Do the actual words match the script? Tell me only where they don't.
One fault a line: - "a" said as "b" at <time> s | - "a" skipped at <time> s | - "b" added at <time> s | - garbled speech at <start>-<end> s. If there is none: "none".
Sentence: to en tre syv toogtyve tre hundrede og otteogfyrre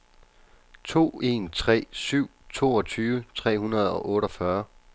none